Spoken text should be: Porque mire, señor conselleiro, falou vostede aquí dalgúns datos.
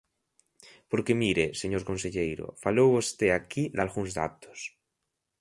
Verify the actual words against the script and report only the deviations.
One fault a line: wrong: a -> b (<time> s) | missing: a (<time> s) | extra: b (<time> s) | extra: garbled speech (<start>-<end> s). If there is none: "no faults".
no faults